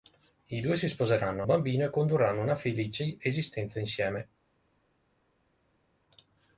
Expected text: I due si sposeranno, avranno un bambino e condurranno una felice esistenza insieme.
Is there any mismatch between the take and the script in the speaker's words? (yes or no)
yes